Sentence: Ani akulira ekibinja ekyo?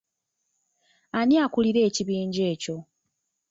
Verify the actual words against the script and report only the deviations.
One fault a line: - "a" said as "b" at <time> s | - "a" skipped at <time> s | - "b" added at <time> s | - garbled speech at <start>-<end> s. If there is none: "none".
none